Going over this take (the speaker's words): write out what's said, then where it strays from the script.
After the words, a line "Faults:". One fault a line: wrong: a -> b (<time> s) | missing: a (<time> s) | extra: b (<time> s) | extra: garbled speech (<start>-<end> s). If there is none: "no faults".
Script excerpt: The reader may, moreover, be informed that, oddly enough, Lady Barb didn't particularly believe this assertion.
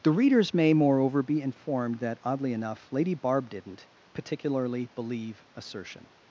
The readers may, moreover, be informed that, oddly enough, Lady Barb didn't particularly believe assertion.
Faults:
wrong: reader -> readers (0.1 s)
missing: this (5.5 s)